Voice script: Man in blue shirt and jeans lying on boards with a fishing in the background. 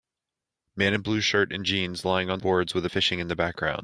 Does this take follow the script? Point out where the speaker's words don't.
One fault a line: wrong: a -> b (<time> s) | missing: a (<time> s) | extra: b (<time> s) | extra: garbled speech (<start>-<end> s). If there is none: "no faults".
no faults